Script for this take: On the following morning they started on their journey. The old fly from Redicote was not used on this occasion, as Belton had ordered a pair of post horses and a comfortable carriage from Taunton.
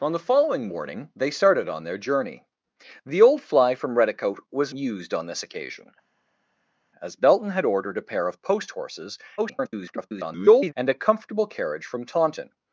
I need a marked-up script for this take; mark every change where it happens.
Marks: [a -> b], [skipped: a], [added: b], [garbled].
On the following morning they started on their journey. The old fly from Redicote was [skipped: not] used on this occasion, as Belton had ordered a pair of post horses [garbled] and a comfortable carriage from Taunton.